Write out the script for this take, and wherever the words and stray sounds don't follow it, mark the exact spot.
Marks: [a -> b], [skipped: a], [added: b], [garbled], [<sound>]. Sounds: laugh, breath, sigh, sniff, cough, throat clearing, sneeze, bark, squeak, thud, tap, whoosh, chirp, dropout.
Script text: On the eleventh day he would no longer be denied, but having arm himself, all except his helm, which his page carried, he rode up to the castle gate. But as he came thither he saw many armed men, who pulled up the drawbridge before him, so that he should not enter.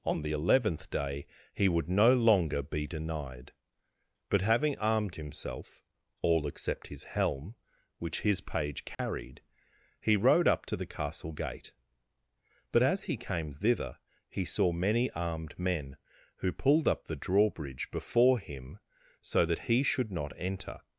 On the eleventh day he would no longer be denied, but having [arm -> armed] himself, all except his helm, which his page carried, [dropout] he rode up to the castle gate. But as he came thither he saw many armed men, who pulled up the drawbridge before him, so that he should not enter.